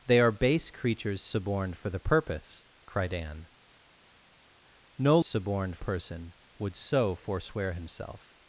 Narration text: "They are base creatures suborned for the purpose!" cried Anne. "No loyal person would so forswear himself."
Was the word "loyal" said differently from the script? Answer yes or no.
yes